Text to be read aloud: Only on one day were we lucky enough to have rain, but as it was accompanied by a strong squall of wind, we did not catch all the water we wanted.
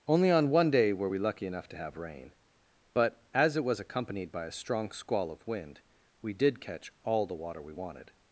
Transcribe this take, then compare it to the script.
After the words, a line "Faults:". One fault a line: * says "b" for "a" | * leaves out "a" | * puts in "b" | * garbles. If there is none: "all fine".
Only on one day were we lucky enough to have rain, but as it was accompanied by a strong squall of wind, we did catch all the water we wanted.
Faults:
* leaves out "not"